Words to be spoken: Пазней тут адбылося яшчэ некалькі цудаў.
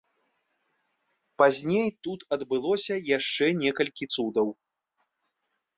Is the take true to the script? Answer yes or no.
yes